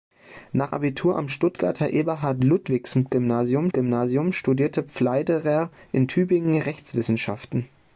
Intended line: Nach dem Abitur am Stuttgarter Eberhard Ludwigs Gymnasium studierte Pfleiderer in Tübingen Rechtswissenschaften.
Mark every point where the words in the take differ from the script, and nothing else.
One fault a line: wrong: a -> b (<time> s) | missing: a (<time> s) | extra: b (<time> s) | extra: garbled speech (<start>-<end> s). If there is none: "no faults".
missing: dem (0.7 s)
extra: Gymnasium (3.7 s)